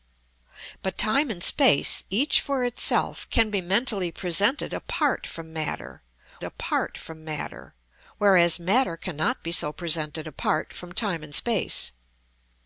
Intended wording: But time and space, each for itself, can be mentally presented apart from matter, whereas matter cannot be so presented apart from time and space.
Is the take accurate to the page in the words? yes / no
no